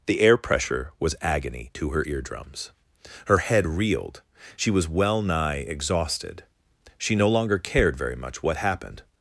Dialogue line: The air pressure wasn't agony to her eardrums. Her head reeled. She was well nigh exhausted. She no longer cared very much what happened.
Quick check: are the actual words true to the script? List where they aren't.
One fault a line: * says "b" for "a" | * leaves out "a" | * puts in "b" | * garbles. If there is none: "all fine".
* says "was" for "wasn't"